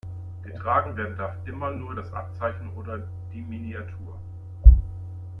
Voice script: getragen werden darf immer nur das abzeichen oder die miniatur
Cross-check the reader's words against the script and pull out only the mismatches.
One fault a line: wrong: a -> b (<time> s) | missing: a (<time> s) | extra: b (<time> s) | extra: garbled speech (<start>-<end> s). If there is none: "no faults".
no faults